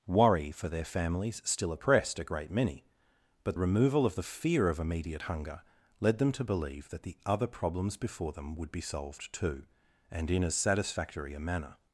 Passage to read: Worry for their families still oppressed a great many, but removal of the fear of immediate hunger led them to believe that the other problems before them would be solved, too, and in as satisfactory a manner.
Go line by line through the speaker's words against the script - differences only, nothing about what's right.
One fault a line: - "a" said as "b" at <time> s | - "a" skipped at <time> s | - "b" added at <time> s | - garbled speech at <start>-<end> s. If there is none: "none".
none